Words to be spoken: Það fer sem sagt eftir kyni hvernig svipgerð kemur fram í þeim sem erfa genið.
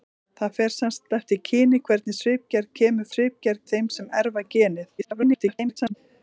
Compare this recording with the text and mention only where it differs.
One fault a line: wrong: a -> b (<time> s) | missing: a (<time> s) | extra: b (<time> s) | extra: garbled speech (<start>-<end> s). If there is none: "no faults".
wrong: fram -> svipgerð (3.1 s)
extra: garbled speech (5.0-5.9 s)